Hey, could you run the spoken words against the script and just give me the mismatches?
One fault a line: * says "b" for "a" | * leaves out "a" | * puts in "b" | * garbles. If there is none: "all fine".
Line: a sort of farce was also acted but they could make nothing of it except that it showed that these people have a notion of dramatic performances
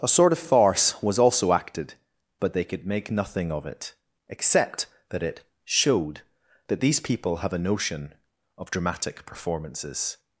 all fine